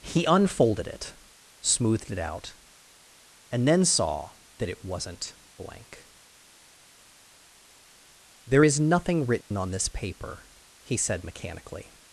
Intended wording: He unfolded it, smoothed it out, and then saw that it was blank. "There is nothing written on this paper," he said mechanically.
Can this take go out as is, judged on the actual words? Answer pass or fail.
fail